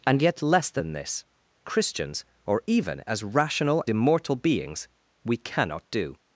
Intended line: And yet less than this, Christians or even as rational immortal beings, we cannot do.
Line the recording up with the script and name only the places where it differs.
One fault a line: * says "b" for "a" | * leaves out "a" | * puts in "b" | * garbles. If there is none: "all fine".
all fine